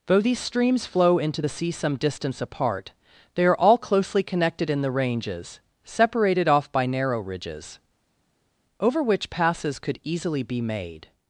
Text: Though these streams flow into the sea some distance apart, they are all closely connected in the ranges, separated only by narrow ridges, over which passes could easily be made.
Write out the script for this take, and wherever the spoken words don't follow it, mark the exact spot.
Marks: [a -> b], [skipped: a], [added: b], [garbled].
Though these streams flow into the sea some distance apart, they are all closely connected in the ranges, separated [only -> off] by narrow ridges, over which passes could easily be made.